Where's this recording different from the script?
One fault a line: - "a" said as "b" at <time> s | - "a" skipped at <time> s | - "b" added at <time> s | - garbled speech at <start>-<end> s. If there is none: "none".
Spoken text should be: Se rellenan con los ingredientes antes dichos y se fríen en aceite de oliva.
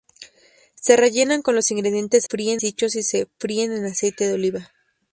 - "antes" said as "fríen" at 2.3 s